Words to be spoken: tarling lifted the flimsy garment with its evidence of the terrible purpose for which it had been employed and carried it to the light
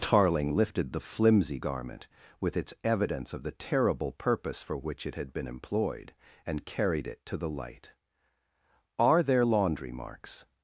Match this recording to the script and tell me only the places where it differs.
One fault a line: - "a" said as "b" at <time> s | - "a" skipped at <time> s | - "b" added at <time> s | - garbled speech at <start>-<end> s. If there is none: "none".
- "are there laundry marks" added at 9.0 s